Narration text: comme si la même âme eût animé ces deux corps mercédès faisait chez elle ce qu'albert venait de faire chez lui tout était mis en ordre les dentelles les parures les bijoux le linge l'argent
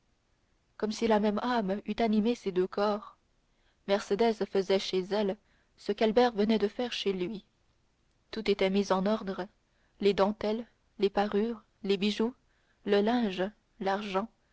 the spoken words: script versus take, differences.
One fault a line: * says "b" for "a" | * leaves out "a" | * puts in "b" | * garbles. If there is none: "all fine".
all fine